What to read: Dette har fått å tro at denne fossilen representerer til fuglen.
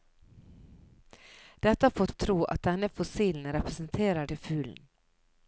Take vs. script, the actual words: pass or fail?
pass